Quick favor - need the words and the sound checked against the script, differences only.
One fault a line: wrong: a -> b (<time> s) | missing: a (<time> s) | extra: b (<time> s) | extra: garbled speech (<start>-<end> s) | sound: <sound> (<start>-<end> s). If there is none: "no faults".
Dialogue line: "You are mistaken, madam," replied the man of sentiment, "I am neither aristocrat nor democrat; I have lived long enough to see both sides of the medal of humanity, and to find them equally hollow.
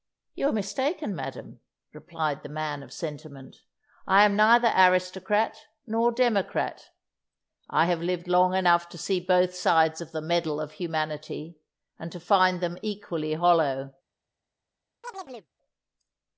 sound: chirp (15.0-15.5 s)